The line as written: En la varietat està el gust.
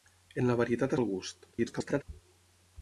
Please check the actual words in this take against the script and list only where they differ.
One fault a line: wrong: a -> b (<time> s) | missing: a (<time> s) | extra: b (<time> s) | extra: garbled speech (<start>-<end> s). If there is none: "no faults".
missing: està (0.9 s)
extra: garbled speech (1.5-2.0 s)